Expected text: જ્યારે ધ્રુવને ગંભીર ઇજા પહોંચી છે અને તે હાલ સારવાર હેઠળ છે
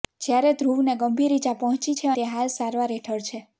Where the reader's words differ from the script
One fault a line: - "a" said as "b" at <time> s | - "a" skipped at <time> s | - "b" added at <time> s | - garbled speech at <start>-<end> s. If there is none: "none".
- "અને" skipped at 2.1 s